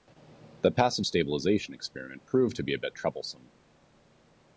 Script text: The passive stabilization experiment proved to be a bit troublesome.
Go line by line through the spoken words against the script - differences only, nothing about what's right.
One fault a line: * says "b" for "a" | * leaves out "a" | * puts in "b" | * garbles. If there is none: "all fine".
all fine